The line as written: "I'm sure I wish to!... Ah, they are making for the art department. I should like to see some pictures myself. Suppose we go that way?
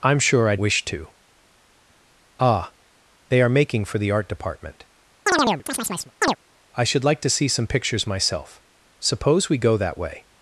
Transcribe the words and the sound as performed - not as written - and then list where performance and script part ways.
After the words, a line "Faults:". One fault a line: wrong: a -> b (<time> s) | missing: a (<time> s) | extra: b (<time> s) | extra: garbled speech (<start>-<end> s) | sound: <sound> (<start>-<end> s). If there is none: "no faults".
"I'm sure I wish to!... Ah, they are making for the art department. I should like to see some pictures myself. Suppose we go that way?
Faults:
sound: chirp (5.3-6.4 s)